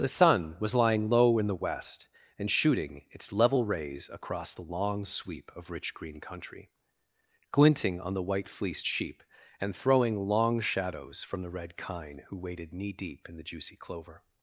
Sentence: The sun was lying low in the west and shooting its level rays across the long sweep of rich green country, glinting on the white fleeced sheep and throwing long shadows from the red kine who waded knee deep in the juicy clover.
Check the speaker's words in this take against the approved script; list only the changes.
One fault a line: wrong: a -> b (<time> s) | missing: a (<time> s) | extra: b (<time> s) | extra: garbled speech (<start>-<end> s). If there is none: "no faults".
no faults